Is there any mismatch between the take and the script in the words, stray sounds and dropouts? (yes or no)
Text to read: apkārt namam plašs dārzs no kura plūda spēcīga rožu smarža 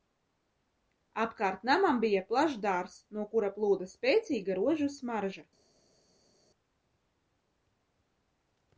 yes